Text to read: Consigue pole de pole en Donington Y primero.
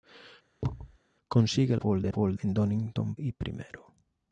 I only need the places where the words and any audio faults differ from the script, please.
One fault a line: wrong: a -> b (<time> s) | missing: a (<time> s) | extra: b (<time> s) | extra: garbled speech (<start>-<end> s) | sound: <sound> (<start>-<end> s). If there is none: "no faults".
sound: thud (0.6-1.0 s)